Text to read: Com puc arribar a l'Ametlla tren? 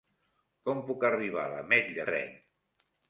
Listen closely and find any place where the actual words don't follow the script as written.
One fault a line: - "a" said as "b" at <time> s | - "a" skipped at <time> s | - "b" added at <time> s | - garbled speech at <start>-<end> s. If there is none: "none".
none